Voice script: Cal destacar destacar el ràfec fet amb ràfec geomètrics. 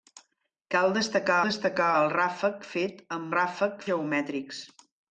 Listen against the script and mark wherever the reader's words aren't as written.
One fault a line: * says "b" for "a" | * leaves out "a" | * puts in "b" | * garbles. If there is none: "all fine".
all fine